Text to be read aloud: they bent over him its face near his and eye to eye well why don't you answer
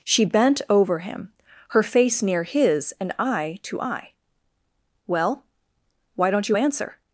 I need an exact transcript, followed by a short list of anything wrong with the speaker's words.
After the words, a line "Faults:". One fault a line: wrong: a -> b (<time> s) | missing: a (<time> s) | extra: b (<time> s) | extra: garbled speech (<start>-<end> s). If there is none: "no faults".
she bent over him her face near his and eye to eye well why don't you answer
Faults:
wrong: they -> she (0.0 s)
wrong: its -> her (1.7 s)